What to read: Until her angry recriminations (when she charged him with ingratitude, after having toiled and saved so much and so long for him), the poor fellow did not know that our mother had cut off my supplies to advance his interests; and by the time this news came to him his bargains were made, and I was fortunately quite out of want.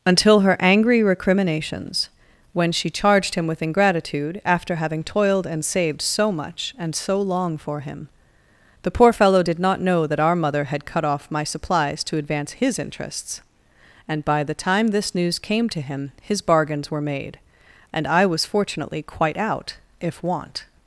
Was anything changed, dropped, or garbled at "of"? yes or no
yes